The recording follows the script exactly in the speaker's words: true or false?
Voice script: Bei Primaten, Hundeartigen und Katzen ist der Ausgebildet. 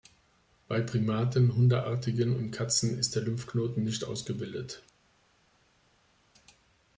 false